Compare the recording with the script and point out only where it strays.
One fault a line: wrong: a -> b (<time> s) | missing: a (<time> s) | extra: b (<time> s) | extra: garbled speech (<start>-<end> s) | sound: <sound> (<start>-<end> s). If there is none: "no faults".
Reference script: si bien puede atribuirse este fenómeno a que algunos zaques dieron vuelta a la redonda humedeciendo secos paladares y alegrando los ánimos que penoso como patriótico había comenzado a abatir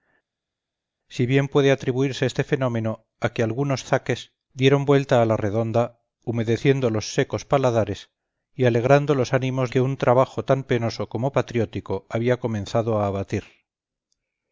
extra: los (6.9 s)
extra: un trabajo tan (9.8 s)